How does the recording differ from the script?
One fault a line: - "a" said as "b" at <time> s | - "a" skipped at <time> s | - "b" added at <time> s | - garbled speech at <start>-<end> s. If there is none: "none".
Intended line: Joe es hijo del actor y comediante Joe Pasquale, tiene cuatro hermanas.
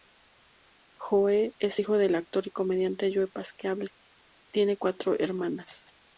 none